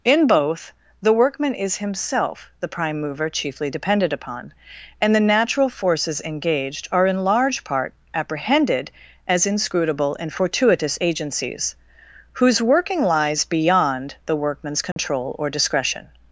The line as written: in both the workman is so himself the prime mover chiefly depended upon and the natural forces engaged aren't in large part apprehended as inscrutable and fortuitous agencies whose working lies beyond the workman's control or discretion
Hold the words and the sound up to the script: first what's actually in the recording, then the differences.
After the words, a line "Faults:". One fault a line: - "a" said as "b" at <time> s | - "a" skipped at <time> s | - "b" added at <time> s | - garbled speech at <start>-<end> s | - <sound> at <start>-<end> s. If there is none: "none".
in both the workman is himself the prime mover chiefly depended upon and the natural forces engaged are in large part apprehended as inscrutable and fortuitous agencies whose working lies beyond the workman's control or discretion
Faults:
- "so" skipped at 1.8 s
- "aren't" said as "are" at 6.9 s
- dropout at 14.9-15.0 s